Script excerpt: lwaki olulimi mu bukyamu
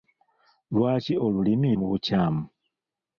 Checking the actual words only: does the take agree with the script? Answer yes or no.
yes